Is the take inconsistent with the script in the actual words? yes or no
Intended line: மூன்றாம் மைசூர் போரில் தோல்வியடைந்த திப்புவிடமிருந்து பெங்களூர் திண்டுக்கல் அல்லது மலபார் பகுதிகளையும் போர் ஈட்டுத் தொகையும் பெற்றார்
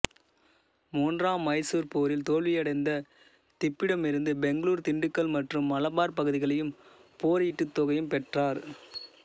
yes